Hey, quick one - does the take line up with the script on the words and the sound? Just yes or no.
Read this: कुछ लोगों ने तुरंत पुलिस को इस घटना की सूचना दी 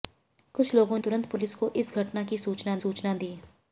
no